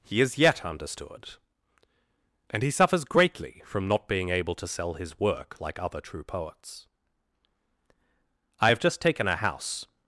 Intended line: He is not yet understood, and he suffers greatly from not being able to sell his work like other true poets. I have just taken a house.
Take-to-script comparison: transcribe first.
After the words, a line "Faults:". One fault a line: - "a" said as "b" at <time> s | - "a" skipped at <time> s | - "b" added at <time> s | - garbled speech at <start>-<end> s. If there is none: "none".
He is yet understood, and he suffers greatly from not being able to sell his work like other true poets. I have just taken a house.
Faults:
- "not" skipped at 0.4 s